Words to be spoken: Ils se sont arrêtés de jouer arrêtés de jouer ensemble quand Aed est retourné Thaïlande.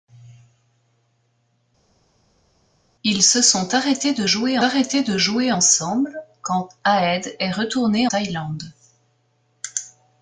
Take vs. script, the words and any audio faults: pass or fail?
pass